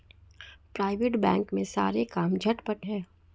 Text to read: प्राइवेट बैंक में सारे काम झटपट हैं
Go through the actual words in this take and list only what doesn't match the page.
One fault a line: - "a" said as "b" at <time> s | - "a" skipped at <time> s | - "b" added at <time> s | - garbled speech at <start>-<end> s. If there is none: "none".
none